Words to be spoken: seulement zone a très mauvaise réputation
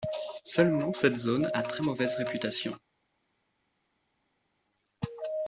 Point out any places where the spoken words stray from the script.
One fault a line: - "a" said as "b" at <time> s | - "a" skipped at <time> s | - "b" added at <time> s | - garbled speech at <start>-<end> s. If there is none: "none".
- "cette" added at 0.9 s